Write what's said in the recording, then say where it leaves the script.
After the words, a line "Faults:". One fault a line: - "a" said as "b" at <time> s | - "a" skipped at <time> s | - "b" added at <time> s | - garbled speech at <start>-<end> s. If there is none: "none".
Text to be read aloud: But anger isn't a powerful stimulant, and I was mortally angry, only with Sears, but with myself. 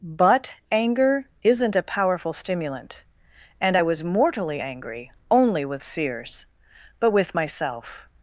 But anger isn't a powerful stimulant, and I was mortally angry, only with Sears, but with myself.
Faults:
none